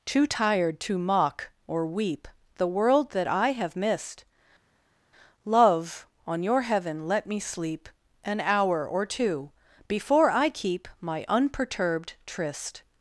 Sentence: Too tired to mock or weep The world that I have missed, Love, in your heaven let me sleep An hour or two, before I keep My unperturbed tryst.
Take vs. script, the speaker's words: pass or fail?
fail